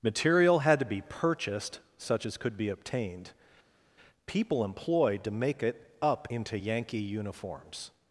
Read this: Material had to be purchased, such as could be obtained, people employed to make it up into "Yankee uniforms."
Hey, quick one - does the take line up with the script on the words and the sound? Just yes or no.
yes